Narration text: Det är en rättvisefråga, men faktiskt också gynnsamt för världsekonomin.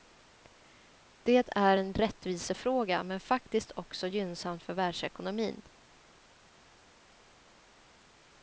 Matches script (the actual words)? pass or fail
pass